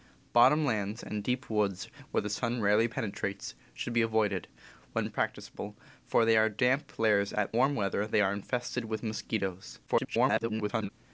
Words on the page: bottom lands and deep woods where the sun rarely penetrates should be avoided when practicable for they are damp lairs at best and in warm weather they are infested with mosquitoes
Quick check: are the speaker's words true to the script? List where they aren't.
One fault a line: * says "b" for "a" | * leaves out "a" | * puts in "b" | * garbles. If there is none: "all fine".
* leaves out "best and in"
* garbles